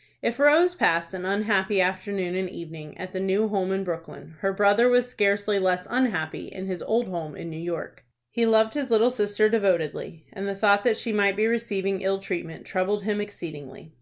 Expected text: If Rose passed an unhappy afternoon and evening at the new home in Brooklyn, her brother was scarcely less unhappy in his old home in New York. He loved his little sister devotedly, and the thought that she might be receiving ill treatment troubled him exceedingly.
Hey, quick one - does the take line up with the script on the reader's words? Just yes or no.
yes